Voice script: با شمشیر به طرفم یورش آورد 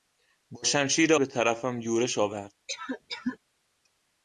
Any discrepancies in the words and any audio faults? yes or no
yes